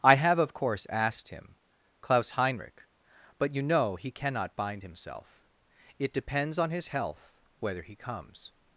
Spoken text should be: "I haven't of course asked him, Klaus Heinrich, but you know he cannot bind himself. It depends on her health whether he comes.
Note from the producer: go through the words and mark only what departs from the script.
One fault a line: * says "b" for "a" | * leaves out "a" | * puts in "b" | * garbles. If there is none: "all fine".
* says "have" for "haven't"
* says "his" for "her"